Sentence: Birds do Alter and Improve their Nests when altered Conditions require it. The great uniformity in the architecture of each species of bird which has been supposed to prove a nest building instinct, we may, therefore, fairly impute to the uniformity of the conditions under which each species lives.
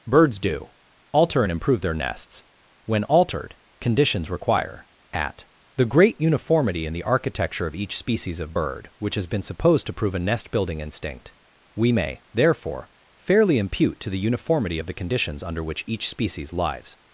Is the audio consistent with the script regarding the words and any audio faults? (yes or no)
no